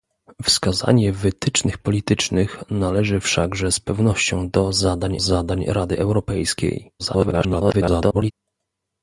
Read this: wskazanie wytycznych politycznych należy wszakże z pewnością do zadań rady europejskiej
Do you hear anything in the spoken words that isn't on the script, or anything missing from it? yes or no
yes